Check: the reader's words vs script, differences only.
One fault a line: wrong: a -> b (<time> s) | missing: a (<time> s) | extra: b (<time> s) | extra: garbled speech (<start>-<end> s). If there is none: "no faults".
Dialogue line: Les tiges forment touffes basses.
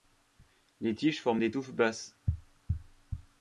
extra: des (1.4 s)